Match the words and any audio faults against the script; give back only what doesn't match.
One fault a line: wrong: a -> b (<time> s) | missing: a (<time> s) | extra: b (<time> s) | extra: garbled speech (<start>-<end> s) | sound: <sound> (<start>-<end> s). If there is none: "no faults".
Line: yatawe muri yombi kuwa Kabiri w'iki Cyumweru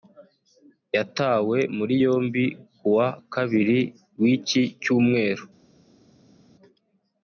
no faults